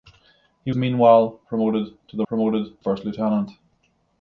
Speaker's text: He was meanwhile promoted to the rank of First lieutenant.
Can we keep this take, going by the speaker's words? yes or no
no